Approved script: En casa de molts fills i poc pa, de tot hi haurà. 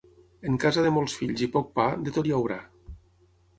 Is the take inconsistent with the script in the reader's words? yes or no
no